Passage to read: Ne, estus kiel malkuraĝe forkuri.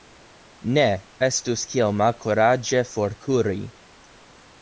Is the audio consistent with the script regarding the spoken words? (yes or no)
yes